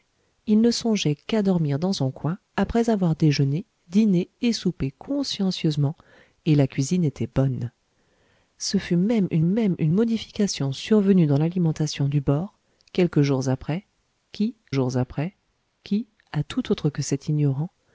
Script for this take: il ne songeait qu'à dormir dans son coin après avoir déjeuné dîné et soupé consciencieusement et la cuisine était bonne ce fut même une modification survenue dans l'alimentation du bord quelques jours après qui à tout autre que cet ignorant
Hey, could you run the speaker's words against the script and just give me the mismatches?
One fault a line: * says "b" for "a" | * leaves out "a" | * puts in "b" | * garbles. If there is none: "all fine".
* puts in "même une"
* puts in "jours après qui"